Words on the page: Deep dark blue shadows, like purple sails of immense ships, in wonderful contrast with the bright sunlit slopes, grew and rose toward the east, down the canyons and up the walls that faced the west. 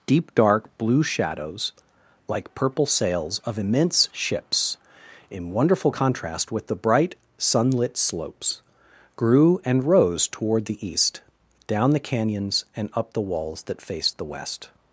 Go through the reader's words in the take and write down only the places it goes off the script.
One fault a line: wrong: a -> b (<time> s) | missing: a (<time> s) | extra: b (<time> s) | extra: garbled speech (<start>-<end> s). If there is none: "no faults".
no faults